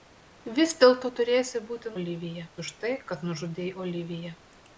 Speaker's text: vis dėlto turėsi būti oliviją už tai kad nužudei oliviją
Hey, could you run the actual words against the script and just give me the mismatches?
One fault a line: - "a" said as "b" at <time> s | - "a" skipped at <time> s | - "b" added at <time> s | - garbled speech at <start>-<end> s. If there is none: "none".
none